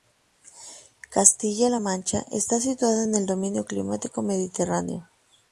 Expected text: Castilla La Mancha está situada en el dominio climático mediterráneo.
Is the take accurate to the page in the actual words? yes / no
yes